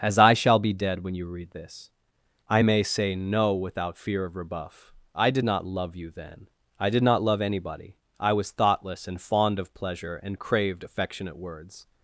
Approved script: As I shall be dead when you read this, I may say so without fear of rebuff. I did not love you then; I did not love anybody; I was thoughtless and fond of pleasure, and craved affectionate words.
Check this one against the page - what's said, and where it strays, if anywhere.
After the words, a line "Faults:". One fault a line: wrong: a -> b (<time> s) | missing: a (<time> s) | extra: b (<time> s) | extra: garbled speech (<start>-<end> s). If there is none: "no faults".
As I shall be dead when you read this, I may say no without fear of rebuff. I did not love you then; I did not love anybody; I was thoughtless and fond of pleasure, and craved affectionate words.
Faults:
wrong: so -> no (3.1 s)